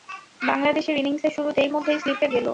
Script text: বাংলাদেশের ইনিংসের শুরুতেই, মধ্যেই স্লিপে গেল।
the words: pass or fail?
pass